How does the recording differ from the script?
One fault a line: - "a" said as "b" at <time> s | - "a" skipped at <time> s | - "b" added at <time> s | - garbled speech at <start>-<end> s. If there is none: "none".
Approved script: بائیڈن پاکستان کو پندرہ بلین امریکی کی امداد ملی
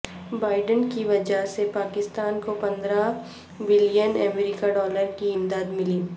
- "کی وجہ سے" added at 0.9 s
- "ڈالر" added at 4.7 s